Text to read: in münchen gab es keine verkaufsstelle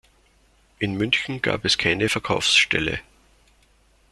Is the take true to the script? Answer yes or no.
yes